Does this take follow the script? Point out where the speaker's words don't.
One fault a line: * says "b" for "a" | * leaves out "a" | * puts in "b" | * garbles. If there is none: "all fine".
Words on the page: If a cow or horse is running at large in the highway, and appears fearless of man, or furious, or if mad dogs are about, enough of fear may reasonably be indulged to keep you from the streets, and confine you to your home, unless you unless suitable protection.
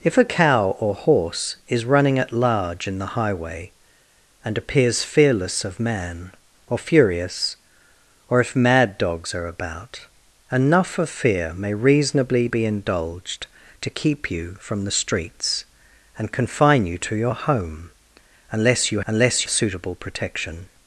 all fine